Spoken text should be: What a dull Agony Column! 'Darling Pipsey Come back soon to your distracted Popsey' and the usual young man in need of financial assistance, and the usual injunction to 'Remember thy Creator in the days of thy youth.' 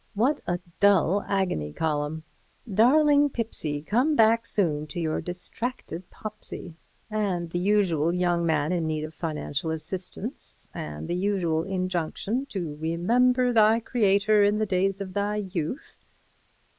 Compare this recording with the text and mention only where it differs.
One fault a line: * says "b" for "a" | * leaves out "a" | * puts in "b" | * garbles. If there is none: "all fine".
all fine